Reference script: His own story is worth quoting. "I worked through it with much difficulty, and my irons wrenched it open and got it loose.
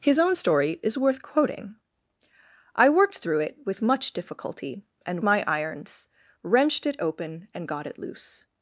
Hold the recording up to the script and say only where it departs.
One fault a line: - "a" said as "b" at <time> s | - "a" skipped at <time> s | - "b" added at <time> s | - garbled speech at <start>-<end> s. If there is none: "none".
none